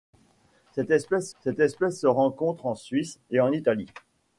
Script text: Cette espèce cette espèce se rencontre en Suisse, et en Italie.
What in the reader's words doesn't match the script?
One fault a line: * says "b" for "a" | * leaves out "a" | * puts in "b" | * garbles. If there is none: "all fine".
all fine